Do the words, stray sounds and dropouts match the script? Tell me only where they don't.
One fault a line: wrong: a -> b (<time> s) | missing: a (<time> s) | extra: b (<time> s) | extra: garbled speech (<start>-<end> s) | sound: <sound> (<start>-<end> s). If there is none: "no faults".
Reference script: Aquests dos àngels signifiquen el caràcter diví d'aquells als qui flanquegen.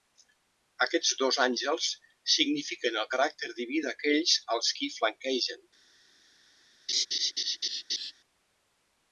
sound: laugh (6.9-8.1 s)